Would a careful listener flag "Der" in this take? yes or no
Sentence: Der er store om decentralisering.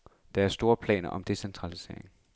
no